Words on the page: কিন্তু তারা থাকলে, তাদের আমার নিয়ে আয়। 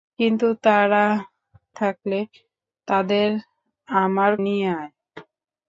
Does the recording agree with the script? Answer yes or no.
yes